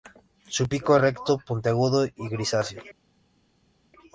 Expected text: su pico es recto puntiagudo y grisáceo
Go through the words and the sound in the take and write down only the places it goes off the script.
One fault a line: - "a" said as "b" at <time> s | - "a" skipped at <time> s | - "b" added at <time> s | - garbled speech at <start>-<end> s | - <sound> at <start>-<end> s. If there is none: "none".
none